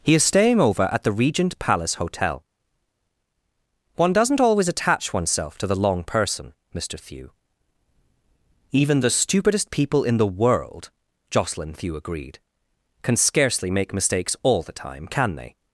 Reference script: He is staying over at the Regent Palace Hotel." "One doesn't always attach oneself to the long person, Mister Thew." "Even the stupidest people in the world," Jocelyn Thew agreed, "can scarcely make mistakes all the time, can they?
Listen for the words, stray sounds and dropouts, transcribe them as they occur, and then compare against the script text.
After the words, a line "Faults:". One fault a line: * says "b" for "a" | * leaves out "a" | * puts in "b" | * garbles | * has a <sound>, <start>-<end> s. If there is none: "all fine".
He is staying over at the Regent Palace Hotel." "One doesn't always attach oneself to the long person, Mister Thew." "Even the stupidest people in the world," Jocelyn Thew agreed, "can scarcely make mistakes all the time, can they?
Faults:
all fine